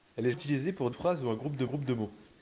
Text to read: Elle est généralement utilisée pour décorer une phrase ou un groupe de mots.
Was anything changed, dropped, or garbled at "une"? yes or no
yes